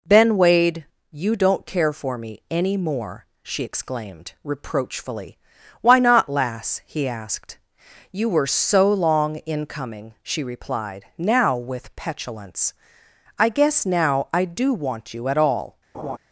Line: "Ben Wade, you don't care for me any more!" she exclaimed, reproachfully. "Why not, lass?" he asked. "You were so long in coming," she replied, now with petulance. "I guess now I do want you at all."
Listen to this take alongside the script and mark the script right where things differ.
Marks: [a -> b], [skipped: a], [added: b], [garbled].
"Ben Wade, you don't care for me any more!" she exclaimed, reproachfully. "Why not, lass?" he asked. "You were so long in coming," she replied, now with petulance. "I guess now I do want you at all."